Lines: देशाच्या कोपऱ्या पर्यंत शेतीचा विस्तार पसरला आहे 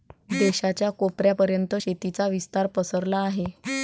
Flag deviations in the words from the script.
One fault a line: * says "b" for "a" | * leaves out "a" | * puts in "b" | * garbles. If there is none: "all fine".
all fine